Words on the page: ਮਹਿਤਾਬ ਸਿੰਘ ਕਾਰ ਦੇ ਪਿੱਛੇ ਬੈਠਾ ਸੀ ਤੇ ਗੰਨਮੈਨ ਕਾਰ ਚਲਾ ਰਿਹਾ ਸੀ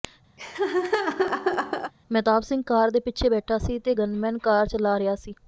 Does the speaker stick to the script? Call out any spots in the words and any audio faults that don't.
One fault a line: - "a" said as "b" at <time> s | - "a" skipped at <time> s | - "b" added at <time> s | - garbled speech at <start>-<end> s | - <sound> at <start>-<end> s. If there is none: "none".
- laugh at 0.4-1.9 s